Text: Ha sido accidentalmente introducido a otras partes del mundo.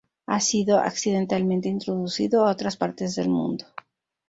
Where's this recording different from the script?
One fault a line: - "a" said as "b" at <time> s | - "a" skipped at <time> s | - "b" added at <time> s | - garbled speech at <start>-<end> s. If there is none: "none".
none